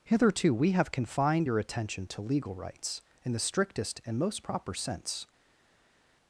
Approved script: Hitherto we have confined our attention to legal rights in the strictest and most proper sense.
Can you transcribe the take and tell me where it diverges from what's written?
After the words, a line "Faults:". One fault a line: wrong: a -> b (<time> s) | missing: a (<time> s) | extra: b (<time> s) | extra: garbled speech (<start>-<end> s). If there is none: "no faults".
Hitherto we have confined your attention to legal rights in the strictest and most proper sense.
Faults:
wrong: our -> your (1.4 s)